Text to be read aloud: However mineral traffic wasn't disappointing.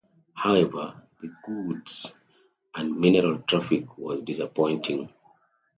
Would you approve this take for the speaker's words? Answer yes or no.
no